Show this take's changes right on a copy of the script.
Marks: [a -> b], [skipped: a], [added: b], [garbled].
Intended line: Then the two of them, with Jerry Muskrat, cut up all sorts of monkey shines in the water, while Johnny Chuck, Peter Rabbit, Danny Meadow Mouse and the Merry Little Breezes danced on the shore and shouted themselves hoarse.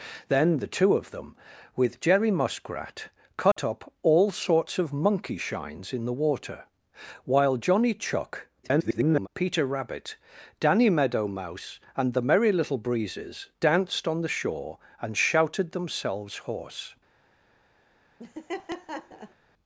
Then the two of them, with Jerry Muskrat, cut up all sorts of monkey shines in the water, while Johnny Chuck, [garbled] Peter Rabbit, Danny Meadow Mouse and the Merry Little Breezes danced on the shore and shouted themselves hoarse.